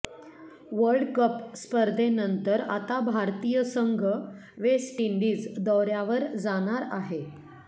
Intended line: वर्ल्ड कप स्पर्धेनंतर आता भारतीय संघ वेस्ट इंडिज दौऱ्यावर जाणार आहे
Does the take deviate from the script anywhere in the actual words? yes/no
no